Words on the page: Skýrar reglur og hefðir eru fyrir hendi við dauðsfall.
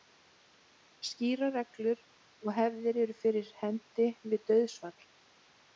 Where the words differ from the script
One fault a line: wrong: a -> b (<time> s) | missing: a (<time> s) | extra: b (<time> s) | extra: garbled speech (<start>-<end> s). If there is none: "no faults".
no faults